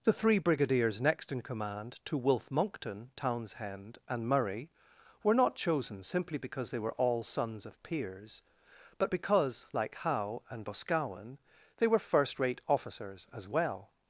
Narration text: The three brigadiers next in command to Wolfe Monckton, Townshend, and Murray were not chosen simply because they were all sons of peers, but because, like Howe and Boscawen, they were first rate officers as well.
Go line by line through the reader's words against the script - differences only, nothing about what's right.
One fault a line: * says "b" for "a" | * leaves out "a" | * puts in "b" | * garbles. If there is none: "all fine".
all fine